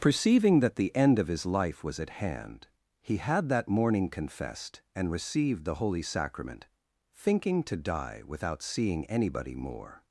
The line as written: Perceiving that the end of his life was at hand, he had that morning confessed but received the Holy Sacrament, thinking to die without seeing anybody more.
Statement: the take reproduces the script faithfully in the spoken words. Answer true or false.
false